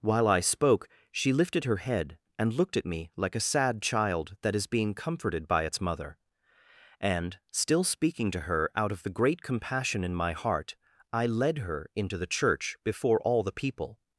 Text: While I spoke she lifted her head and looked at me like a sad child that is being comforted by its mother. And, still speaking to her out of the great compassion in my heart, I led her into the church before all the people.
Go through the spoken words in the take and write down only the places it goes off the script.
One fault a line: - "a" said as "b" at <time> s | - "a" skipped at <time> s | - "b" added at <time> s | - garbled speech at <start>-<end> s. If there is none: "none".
none